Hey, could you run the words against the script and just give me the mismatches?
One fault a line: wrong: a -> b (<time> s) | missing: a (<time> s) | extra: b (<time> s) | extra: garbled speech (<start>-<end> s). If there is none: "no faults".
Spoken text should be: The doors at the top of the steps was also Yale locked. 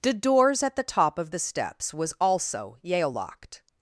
no faults